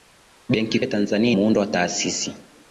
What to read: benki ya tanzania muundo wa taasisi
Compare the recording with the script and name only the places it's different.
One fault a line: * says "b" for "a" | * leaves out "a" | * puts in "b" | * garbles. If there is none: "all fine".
all fine